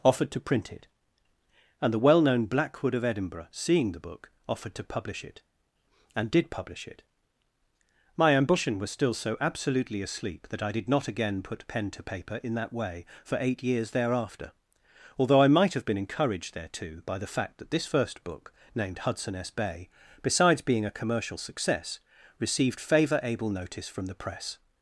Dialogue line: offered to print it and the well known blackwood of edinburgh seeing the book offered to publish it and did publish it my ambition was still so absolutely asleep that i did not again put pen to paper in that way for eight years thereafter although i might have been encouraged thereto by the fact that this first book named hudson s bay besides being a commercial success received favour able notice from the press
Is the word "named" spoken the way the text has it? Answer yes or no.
yes